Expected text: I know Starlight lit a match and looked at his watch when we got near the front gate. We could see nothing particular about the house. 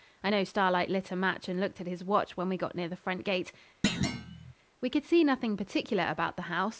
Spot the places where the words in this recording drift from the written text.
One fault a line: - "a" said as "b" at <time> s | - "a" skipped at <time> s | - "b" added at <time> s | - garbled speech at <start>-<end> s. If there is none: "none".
none